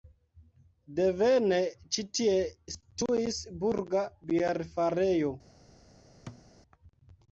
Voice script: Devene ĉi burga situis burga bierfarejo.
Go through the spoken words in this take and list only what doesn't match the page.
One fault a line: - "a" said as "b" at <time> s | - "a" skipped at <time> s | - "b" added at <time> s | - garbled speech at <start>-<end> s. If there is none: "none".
- "burga" said as "tie" at 2.2 s